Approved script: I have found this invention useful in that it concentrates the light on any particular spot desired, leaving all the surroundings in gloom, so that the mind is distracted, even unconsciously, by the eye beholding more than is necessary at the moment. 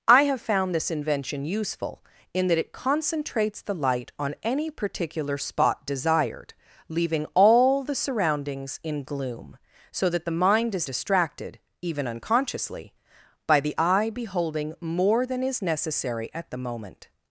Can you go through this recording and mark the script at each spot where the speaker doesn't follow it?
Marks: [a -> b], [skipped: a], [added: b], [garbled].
I have found this invention useful in that it concentrates the light on any particular spot desired, leaving all the surroundings in gloom, so that the mind is distracted, even unconsciously, by the eye beholding more than is necessary at the moment.